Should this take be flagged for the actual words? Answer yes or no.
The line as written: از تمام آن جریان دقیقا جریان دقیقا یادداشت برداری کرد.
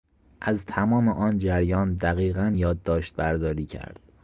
yes